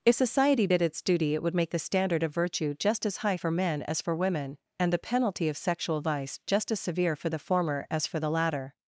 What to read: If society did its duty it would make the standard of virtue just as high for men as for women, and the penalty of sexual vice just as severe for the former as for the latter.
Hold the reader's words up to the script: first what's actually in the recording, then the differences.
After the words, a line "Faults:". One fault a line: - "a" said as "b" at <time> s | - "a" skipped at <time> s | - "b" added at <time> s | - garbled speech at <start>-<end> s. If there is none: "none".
If society did its duty it would make the standard of virtue just as high for men as for women, and the penalty of sexual vice just as severe for the former as for the latter.
Faults:
none